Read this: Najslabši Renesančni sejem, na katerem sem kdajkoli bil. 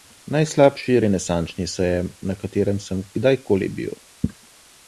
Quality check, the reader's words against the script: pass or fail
pass